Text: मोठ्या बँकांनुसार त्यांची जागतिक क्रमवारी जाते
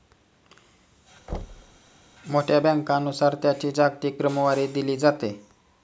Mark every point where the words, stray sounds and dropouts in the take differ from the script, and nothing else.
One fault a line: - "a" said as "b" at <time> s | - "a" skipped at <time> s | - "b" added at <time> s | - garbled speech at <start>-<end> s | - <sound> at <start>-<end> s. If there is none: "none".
- thud at 1.3-1.8 s
- "दिली" added at 4.7 s